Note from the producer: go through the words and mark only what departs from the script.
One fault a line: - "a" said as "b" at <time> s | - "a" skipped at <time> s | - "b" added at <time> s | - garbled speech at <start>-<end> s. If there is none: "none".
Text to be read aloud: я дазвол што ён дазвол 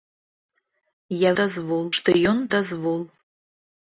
none